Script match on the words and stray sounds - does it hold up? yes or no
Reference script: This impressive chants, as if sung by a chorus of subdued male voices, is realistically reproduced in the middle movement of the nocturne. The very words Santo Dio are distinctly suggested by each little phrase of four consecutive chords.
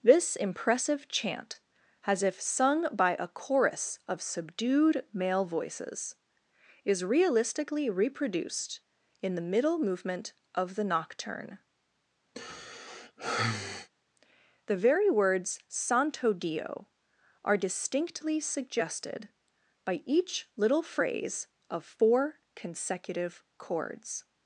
no